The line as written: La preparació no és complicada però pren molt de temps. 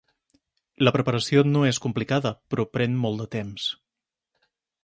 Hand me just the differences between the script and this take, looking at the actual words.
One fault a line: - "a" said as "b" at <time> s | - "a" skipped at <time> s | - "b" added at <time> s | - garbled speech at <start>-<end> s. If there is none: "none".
none